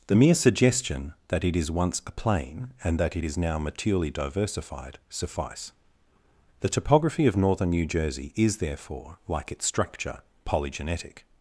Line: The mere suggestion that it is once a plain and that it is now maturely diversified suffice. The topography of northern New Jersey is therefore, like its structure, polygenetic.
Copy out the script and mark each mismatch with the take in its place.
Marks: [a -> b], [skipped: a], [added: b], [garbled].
The mere suggestion that it is once a plain and that it is now maturely diversified suffice. The topography of northern New Jersey is therefore, like its structure, polygenetic.